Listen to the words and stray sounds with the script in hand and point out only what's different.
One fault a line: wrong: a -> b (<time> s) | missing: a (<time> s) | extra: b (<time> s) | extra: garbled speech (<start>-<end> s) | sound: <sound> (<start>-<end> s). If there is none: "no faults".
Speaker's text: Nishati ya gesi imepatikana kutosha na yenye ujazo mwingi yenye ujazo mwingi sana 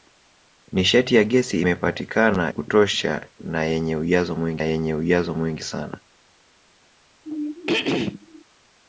sound: throat clearing (7.2-8.4 s)